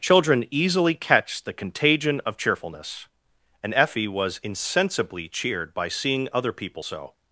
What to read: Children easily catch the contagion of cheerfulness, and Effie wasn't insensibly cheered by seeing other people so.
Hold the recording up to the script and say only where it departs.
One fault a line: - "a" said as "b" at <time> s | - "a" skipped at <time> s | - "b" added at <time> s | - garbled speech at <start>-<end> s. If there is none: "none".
- "wasn't" said as "was" at 4.1 s